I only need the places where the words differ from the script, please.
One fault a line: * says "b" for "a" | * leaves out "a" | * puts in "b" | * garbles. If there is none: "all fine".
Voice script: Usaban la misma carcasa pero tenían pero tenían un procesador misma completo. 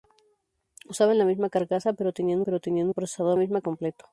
all fine